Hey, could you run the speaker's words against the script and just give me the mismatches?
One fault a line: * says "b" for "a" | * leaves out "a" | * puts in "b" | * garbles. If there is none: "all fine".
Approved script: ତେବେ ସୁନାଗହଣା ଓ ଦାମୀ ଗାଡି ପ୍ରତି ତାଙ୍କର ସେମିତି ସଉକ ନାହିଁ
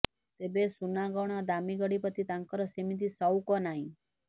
all fine